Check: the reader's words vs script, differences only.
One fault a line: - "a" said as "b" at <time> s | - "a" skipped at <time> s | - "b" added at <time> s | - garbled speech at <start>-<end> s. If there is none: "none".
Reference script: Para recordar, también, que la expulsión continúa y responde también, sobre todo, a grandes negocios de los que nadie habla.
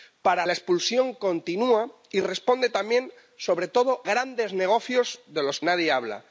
- "recordar también que" skipped at 0.5 s
- "a" skipped at 4.1 s
- "que" skipped at 5.6 s